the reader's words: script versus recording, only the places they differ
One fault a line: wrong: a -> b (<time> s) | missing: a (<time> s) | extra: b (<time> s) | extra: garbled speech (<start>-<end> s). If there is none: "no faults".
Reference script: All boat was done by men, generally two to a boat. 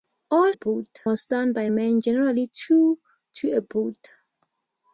no faults